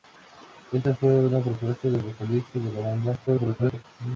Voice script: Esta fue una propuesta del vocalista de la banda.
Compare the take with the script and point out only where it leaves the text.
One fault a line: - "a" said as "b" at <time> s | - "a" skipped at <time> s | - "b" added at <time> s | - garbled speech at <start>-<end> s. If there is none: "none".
- garbled speech at 3.3-3.8 s